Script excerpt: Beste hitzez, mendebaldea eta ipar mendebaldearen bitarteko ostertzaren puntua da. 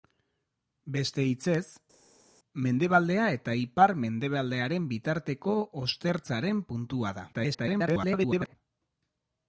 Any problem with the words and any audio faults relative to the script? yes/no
yes